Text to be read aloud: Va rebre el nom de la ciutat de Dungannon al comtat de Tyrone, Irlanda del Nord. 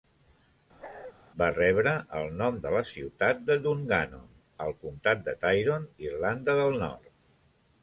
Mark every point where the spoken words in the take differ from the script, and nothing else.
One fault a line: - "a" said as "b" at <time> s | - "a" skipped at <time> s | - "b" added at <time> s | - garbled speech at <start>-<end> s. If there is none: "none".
none